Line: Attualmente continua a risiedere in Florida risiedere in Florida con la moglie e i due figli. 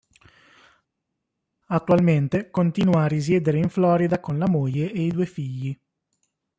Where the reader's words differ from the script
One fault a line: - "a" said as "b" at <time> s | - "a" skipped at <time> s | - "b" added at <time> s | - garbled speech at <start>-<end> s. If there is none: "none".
- "risiedere in Florida" skipped at 4.2 s